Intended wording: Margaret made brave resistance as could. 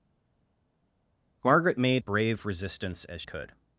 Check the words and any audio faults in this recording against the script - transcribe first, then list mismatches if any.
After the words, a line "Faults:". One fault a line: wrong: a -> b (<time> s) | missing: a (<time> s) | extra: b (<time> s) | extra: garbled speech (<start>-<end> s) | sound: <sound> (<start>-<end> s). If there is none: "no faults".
Margaret made brave resistance as could.
Faults:
no faults